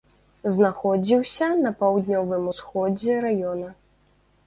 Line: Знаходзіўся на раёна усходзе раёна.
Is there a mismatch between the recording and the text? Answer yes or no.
yes